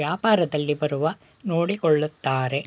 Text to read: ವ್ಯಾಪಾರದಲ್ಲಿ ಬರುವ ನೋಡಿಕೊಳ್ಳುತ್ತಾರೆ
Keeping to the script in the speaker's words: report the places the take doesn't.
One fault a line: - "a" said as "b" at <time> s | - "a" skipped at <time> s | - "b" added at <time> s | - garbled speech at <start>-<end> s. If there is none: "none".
none